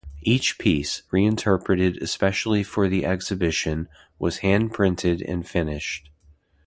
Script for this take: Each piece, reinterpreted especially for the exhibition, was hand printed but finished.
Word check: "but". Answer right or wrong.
wrong